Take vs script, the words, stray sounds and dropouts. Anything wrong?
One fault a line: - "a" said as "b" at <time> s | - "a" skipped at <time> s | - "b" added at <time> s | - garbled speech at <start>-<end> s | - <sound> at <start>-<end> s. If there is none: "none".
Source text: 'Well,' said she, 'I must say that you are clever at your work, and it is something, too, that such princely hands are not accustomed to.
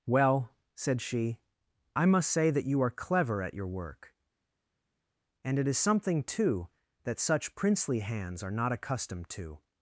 none